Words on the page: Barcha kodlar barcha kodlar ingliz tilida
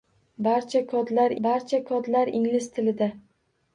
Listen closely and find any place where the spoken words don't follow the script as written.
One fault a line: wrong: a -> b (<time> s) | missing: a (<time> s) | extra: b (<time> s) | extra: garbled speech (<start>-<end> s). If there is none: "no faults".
no faults